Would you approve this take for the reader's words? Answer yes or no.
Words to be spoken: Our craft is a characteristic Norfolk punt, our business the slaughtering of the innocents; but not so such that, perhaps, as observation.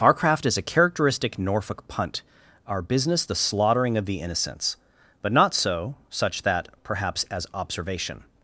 yes